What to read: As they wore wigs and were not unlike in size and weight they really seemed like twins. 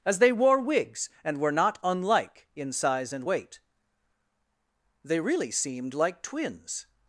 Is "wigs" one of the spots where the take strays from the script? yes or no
no